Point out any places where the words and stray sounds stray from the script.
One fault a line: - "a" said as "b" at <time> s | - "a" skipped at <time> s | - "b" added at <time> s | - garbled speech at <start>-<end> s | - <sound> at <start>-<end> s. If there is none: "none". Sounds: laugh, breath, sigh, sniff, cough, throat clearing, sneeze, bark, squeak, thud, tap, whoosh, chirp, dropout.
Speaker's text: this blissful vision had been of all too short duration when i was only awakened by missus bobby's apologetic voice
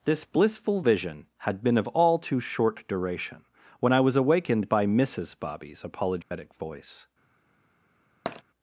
- "only" skipped at 4.2 s
- dropout at 6.2-6.3 s
- tap at 8.3-8.4 s